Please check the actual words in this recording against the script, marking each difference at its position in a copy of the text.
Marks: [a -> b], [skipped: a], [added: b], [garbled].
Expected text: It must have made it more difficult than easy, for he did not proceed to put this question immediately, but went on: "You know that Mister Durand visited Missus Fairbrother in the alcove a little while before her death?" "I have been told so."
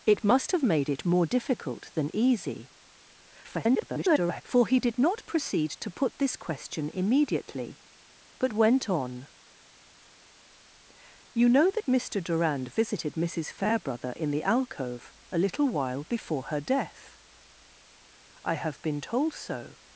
It must have made it more difficult than easy, [garbled] for he did not proceed to put this question immediately, but went on: "You know that Mister Durand visited Missus Fairbrother in the alcove a little while before her death?" "I have been told so."